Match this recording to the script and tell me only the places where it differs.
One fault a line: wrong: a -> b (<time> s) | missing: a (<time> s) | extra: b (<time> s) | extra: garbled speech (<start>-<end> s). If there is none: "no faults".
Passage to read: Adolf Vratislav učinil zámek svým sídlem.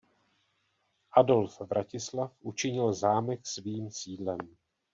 no faults